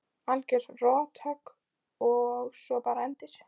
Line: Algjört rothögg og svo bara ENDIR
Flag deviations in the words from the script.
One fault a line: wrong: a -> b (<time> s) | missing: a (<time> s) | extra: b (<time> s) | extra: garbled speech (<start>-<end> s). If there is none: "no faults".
no faults